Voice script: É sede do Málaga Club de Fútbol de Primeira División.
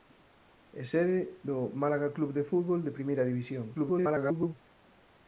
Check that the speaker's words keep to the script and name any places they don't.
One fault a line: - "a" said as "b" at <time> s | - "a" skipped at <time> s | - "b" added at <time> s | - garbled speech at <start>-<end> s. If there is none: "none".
- garbled speech at 3.7-4.5 s